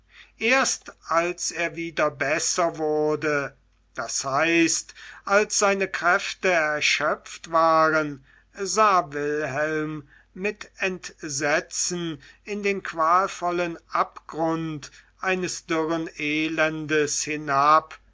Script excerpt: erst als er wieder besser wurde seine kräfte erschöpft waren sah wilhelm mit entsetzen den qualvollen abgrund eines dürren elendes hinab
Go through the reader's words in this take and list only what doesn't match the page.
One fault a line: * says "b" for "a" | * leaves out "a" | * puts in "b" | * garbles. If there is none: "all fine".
* puts in "das heißt als"
* puts in "in"